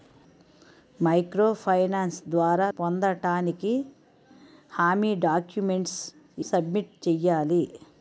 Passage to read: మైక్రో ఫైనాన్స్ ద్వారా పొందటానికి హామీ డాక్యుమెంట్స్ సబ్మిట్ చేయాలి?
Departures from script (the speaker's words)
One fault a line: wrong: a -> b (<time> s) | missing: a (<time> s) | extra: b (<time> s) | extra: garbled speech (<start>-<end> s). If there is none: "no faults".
no faults